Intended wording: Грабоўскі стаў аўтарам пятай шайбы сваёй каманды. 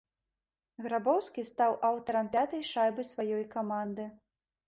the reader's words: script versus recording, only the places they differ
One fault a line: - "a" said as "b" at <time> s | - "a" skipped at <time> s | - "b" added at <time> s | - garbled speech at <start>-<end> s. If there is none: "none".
none